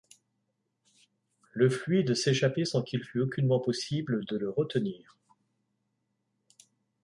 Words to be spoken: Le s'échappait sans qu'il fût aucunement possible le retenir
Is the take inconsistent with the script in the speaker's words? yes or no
yes